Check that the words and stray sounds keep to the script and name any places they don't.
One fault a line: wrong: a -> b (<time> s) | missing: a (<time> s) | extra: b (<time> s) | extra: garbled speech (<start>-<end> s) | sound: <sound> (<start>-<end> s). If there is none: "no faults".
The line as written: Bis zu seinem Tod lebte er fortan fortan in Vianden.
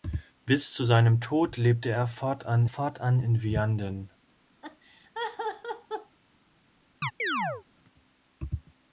sound: laugh (4.6-6.2 s)
sound: chirp (7.0-7.6 s)